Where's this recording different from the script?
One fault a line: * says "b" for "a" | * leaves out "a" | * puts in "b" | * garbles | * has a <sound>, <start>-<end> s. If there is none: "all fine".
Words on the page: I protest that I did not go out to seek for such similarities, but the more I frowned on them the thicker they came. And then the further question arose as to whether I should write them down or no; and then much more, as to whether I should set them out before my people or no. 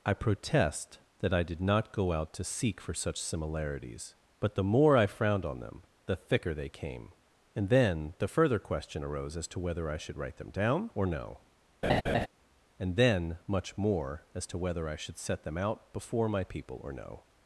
* has a laugh, 11.8-12.3 s